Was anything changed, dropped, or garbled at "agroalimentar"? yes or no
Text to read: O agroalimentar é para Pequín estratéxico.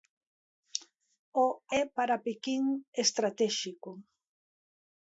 yes